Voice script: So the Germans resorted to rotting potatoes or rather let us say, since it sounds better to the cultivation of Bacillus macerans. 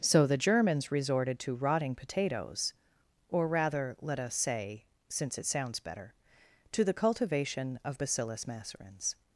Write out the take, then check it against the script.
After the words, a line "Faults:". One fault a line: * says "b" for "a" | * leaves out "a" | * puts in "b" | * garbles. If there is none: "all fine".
So the Germans resorted to rotting potatoes or rather let us say, since it sounds better to the cultivation of Bacillus macerans.
Faults:
all fine